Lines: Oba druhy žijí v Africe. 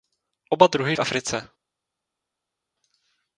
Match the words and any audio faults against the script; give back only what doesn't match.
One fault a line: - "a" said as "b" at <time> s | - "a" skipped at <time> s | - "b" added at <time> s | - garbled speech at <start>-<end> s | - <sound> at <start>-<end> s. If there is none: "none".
- "žijí" skipped at 1.0 s